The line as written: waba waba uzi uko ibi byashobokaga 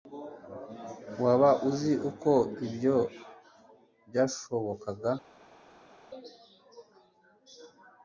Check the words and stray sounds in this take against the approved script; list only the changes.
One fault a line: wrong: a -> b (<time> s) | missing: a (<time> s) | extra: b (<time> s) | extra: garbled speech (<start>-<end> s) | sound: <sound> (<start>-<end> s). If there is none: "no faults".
missing: waba (1.5 s)
wrong: ibi -> ibyo (2.7 s)